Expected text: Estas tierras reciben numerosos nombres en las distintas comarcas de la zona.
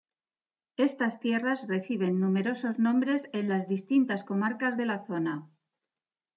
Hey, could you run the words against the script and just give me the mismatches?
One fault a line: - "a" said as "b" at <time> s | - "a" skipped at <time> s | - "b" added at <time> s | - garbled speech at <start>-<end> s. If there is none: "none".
none